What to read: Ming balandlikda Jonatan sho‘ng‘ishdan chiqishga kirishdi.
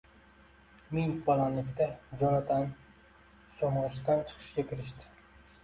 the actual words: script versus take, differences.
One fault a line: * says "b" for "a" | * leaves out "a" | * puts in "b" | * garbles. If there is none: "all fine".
all fine